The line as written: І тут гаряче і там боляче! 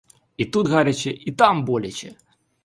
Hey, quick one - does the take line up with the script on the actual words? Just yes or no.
yes